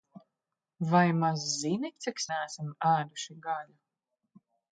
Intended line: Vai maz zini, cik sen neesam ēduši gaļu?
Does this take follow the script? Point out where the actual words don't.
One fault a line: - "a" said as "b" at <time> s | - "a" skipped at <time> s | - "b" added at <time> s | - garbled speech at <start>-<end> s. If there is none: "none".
- "sen" skipped at 2.2 s